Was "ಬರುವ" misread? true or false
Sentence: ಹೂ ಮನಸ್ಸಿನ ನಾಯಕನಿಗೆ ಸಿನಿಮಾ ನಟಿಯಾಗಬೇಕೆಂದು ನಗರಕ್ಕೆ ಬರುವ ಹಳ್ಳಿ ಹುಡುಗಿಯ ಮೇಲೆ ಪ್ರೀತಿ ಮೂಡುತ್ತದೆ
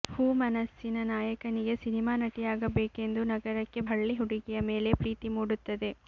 true